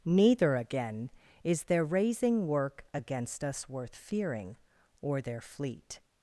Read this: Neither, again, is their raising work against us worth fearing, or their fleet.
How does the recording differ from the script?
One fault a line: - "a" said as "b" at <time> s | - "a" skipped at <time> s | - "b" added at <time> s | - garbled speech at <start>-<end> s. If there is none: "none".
none